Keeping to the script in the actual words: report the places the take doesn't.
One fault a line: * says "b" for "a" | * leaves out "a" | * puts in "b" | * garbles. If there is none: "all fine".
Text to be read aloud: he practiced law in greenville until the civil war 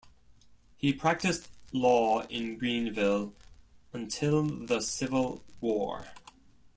all fine